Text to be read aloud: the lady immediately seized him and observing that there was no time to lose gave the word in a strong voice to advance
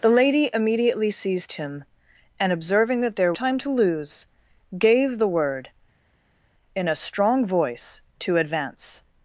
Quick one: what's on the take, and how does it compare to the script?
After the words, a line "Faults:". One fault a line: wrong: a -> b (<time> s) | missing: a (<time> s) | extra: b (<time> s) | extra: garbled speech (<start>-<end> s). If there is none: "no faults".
the lady immediately seized him and observing that there time to lose gave the word in a strong voice to advance
Faults:
missing: was no (3.4 s)